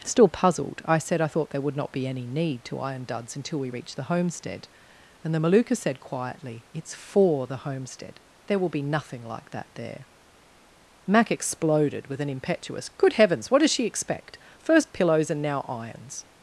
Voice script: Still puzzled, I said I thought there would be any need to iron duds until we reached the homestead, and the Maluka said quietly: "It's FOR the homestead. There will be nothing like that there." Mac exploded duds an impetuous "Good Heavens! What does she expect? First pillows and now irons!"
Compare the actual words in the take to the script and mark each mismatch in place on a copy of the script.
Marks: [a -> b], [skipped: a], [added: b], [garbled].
Still puzzled, I said I thought there would [added: not] be any need to iron duds until we reached the homestead, and the Maluka said quietly: "It's FOR the homestead. There will be nothing like that there." Mac exploded [duds -> with] an impetuous "Good Heavens! What does she expect? First pillows and now irons!"